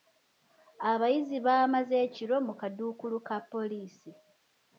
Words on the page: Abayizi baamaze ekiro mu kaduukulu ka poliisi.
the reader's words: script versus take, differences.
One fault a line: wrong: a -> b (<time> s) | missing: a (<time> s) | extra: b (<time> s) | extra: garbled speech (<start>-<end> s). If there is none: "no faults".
no faults